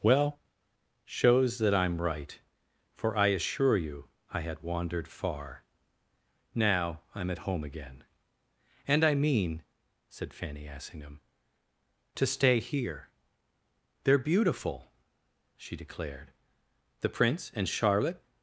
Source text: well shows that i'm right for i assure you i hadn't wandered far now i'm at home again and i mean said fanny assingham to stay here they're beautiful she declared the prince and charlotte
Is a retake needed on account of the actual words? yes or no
yes